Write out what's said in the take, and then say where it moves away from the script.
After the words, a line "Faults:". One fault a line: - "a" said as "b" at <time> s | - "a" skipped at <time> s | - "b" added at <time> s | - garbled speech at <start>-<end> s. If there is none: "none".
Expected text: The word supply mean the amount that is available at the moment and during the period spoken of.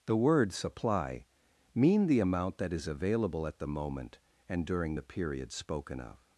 The word supply mean the amount that is available at the moment and during the period spoken of.
Faults:
none